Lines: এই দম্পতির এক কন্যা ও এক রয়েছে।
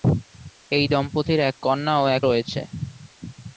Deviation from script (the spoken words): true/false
false